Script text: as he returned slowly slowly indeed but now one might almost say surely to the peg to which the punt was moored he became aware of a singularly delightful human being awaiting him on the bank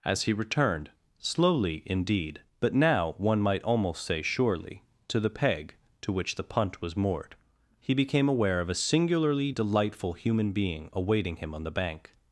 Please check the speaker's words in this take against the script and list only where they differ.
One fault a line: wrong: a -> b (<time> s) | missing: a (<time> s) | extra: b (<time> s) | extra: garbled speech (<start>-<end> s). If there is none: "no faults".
missing: slowly (1.8 s)